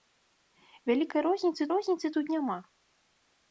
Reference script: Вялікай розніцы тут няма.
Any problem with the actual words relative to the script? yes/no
yes